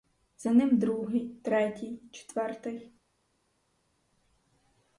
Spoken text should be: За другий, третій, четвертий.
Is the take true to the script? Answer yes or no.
no